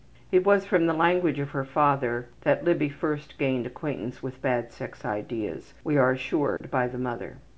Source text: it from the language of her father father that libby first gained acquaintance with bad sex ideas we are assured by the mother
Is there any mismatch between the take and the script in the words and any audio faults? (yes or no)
yes